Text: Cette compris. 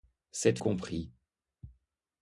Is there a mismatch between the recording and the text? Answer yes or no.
no